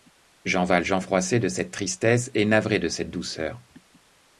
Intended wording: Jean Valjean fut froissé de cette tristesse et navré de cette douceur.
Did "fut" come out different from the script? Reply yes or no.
yes